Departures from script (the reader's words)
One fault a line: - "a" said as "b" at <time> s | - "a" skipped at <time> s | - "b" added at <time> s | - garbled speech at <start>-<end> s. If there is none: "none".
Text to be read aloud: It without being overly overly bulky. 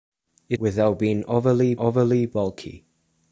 none